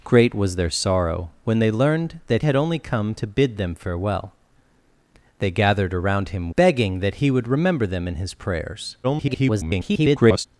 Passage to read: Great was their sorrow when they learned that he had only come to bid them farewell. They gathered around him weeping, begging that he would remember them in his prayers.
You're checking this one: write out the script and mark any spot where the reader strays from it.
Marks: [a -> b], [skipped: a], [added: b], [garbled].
Great was their sorrow when they learned that [skipped: he] had only come to bid them farewell. They gathered around him [skipped: weeping,] begging that he would remember them in his prayers. [garbled]